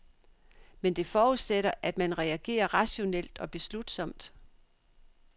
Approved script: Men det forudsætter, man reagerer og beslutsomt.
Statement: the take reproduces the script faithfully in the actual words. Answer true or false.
false